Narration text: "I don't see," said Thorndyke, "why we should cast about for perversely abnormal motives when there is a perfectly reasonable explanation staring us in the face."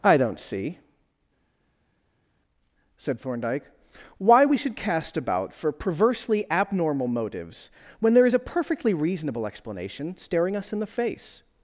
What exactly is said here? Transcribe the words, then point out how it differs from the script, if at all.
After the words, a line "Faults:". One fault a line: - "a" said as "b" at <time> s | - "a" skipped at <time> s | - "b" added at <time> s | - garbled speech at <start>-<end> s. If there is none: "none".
"I don't see," said Thorndyke, "why we should cast about for perversely abnormal motives when there is a perfectly reasonable explanation staring us in the face."
Faults:
none